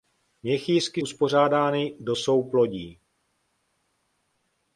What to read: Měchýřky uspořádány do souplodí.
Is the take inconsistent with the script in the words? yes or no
no